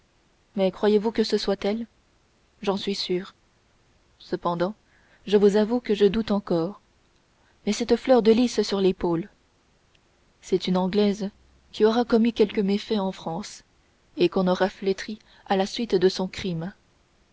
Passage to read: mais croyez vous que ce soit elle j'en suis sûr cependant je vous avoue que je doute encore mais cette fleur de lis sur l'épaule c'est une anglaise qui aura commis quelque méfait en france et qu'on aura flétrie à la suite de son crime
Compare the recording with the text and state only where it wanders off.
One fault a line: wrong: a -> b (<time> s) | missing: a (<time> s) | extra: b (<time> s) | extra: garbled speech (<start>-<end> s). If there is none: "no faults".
no faults